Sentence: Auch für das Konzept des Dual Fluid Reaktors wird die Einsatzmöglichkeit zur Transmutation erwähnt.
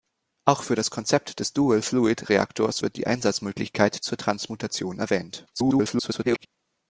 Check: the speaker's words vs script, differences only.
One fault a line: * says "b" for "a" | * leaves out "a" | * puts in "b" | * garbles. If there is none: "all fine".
* garbles